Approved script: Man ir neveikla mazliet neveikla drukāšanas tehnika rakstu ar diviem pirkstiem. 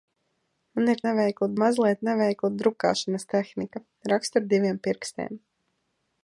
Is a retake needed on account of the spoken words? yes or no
no